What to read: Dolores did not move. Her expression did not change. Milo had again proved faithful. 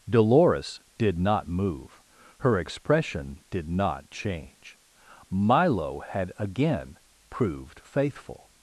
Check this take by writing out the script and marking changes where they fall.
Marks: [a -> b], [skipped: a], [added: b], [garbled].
Dolores did not move. Her expression did not change. Milo had again proved faithful.